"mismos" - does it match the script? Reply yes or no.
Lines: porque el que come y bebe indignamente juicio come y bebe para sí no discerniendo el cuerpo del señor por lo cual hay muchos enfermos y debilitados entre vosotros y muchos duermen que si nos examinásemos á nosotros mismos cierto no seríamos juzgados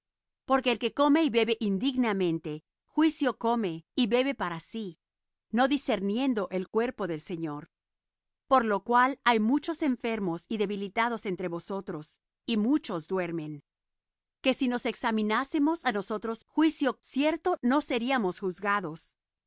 no